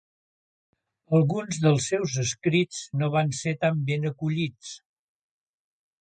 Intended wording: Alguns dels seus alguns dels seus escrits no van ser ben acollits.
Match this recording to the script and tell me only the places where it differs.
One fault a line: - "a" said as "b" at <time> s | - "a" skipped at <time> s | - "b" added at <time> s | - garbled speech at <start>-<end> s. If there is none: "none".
- "alguns dels seus" skipped at 2.1 s
- "tan" added at 3.6 s